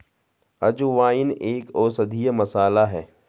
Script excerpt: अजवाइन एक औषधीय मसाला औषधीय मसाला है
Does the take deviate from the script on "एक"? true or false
false